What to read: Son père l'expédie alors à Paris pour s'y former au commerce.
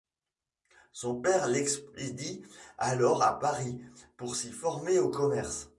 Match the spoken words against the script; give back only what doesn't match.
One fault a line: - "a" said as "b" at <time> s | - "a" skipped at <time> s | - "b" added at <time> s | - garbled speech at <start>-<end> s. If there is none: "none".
none